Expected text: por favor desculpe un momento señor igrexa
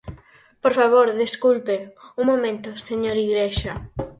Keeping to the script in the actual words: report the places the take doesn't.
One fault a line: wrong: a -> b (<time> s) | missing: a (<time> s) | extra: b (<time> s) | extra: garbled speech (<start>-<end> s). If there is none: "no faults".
no faults